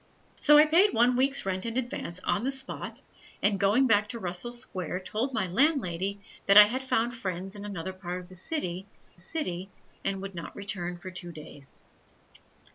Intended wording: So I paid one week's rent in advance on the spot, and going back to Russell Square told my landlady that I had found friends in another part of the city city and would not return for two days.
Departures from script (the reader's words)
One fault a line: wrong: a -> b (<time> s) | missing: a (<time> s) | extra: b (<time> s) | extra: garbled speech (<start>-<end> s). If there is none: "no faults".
no faults